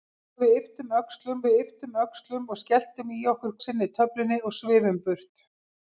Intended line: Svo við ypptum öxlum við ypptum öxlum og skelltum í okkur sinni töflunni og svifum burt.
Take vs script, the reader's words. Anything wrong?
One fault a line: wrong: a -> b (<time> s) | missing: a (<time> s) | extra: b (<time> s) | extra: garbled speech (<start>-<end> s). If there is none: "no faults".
no faults